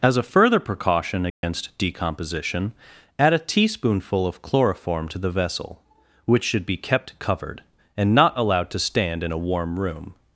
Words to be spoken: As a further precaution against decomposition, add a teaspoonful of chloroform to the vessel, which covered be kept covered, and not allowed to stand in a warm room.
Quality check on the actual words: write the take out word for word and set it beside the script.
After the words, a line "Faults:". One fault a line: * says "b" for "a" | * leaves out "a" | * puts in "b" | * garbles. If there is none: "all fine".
As a further precaution against decomposition, add a teaspoonful of chloroform to the vessel, which should be kept covered, and not allowed to stand in a warm room.
Faults:
* says "should" for "covered"